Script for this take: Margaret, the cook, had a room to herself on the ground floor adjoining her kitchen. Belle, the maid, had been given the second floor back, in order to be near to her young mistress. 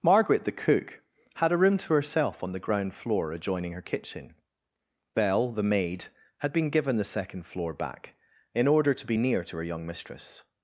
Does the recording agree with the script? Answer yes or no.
yes